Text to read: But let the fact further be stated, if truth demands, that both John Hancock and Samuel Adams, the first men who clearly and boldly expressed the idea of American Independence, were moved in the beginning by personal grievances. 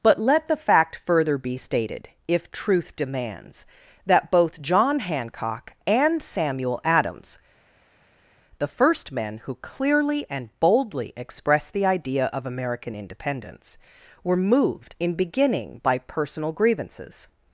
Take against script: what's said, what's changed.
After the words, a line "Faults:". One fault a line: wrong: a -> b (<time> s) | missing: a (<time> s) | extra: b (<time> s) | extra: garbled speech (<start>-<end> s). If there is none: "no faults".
But let the fact further be stated, if truth demands, that both John Hancock and Samuel Adams, the first men who clearly and boldly expressed the idea of American Independence, were moved in beginning by personal grievances.
Faults:
missing: the (15.1 s)